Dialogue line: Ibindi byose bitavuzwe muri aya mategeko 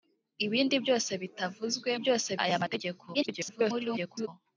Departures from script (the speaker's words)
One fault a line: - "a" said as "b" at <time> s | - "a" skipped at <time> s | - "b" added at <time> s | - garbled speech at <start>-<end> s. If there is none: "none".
- "muri" said as "byose" at 2.0 s
- garbled speech at 3.1-4.3 s